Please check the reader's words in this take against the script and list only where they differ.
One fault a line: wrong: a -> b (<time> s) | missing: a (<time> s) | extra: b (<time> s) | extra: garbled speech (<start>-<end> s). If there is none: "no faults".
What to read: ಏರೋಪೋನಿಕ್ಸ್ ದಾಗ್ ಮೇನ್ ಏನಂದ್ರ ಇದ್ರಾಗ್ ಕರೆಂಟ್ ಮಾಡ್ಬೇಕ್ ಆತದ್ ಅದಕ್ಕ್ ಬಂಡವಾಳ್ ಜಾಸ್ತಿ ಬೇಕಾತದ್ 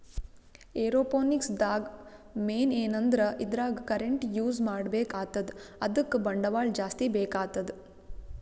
extra: ಯೂಸ್ (4.4 s)